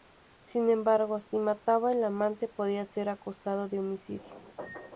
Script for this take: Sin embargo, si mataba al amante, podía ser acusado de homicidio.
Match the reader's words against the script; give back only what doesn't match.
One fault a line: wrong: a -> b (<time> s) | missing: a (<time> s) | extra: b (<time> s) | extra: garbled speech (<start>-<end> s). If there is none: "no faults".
no faults